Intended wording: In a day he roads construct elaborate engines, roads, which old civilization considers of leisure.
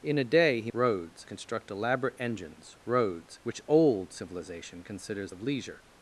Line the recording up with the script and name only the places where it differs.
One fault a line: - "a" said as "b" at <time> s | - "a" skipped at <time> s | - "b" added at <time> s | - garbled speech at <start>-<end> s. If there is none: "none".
none